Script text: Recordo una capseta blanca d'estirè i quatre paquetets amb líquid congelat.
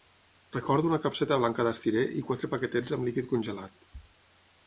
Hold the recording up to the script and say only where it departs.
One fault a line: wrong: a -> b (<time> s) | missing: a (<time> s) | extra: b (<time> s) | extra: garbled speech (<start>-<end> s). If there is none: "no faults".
no faults